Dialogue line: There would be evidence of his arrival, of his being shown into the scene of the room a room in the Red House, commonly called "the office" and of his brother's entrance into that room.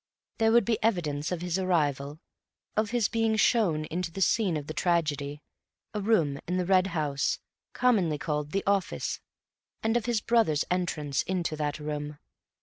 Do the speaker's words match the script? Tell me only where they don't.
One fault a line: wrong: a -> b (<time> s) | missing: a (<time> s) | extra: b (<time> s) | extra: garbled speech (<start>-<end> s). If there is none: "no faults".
wrong: room -> tragedy (4.7 s)